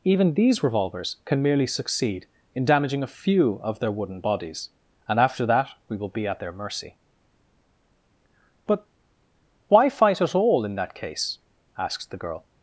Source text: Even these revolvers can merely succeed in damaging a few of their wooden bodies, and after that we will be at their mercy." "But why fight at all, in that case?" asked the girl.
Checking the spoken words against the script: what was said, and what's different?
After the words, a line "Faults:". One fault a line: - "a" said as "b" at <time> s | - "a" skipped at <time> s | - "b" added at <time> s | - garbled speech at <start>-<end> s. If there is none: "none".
Even these revolvers can merely succeed in damaging a few of their wooden bodies, and after that we will be at their mercy." "But why fight at all, in that case?" asks the girl.
Faults:
- "asked" said as "asks" at 11.8 s